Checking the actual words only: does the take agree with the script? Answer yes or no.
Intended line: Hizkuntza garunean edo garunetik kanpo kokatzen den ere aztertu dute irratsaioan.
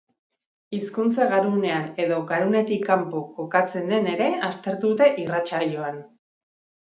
yes